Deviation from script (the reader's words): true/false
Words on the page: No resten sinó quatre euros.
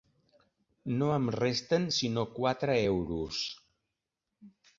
true